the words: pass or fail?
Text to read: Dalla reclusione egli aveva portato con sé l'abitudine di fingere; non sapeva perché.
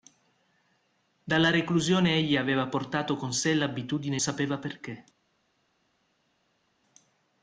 fail